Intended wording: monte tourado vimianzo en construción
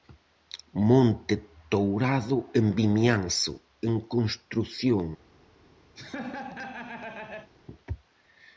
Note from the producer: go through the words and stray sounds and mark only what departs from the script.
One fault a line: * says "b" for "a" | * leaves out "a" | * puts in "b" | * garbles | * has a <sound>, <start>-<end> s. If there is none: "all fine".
* puts in "en"
* has a laugh, 6.0-7.5 s